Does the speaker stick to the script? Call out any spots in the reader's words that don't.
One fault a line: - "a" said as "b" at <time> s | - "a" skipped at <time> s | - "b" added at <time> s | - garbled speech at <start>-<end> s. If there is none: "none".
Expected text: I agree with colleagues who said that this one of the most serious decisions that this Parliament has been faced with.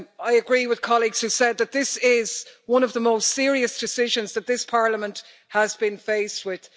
- "is" added at 2.0 s